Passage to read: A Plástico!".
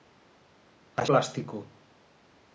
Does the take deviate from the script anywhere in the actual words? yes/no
no